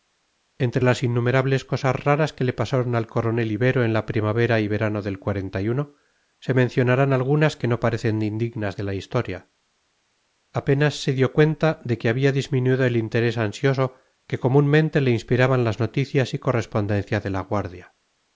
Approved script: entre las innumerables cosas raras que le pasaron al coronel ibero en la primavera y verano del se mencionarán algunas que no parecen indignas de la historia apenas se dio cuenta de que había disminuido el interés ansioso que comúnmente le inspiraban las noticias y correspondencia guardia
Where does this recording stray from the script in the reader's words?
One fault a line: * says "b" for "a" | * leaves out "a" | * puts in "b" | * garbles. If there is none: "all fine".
* puts in "de la"